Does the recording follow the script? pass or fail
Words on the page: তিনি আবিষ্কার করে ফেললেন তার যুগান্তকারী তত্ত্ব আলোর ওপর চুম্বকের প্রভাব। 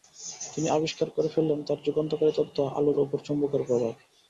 pass